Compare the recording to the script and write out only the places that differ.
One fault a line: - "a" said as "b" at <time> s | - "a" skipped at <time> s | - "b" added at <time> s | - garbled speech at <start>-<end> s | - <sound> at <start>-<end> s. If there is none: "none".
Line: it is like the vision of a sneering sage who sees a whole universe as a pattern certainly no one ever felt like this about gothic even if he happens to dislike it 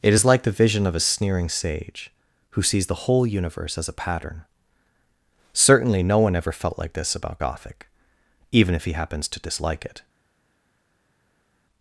- "a" said as "the" at 2.9 s